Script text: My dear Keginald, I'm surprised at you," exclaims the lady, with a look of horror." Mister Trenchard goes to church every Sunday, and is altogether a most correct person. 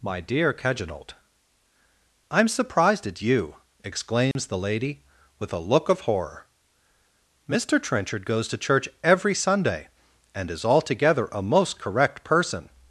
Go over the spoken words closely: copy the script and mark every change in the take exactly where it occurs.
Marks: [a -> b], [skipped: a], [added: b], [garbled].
My dear Keginald, I'm surprised at you," exclaims the lady, with a look of horror." Mister Trenchard goes to church every Sunday, and is altogether a most correct person.